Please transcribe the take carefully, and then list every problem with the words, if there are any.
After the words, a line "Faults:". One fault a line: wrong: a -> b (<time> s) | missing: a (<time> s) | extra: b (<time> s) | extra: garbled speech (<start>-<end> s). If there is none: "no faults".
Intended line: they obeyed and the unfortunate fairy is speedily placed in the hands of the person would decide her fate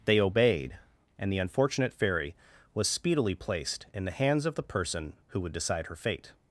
they obeyed and the unfortunate fairy was speedily placed in the hands of the person who would decide her fate
Faults:
wrong: is -> was (2.7 s)
extra: who (5.3 s)